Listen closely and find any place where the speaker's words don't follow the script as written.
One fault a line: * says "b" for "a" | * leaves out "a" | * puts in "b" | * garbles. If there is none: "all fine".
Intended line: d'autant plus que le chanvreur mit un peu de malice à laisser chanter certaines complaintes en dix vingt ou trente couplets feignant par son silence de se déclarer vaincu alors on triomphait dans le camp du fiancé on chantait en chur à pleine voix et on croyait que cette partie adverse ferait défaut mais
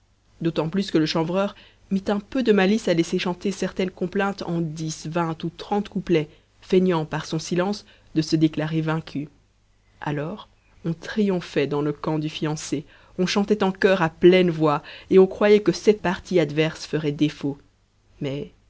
all fine